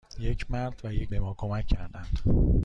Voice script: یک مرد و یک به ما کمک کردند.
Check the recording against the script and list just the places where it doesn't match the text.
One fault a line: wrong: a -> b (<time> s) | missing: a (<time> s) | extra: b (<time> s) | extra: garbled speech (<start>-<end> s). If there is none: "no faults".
no faults